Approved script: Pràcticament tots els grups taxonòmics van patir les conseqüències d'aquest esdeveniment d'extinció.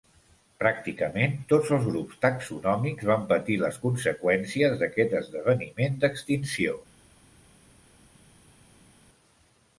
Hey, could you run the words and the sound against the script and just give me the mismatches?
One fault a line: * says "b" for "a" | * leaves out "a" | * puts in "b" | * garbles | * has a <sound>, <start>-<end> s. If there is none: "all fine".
all fine